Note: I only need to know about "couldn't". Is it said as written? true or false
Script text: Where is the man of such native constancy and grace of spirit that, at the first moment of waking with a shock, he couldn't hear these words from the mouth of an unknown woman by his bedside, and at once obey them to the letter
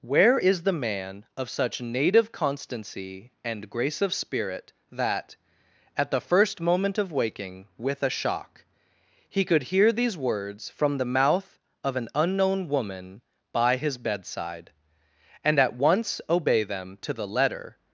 false